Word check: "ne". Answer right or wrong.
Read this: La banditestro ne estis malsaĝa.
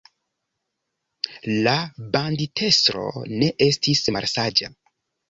right